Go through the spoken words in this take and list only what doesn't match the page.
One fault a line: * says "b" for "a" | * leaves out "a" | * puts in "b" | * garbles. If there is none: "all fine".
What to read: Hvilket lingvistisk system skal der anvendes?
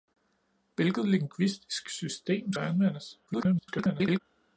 * leaves out "skal"
* garbles